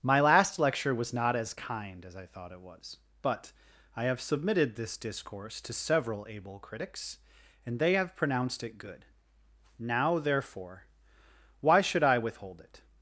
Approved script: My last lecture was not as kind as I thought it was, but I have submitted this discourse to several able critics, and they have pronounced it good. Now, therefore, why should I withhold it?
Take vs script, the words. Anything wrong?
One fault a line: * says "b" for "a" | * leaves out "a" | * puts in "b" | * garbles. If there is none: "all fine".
all fine